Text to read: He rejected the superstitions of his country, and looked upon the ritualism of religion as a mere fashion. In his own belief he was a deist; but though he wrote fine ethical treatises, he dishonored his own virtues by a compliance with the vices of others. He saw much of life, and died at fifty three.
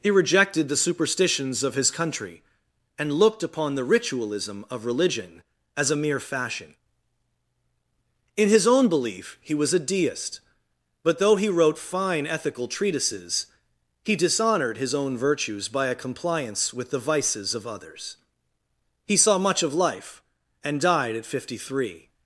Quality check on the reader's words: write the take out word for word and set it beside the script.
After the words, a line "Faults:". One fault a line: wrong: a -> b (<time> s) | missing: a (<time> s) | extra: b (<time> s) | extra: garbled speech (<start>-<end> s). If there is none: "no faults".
He rejected the superstitions of his country, and looked upon the ritualism of religion as a mere fashion. In his own belief he was a deist; but though he wrote fine ethical treatises, he dishonored his own virtues by a compliance with the vices of others. He saw much of life, and died at fifty three.
Faults:
no faults